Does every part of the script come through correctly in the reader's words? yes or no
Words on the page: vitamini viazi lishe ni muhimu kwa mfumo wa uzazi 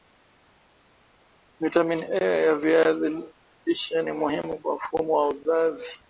no